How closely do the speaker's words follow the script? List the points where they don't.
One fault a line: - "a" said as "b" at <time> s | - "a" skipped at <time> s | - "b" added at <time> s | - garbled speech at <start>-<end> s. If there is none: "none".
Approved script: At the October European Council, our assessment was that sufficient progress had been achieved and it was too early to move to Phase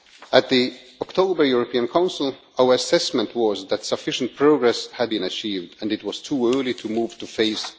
none